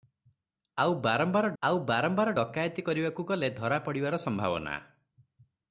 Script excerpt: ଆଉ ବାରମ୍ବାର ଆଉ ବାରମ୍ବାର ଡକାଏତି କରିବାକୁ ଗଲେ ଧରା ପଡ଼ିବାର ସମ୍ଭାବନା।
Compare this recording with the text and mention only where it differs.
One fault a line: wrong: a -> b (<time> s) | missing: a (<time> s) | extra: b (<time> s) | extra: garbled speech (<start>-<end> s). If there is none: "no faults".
no faults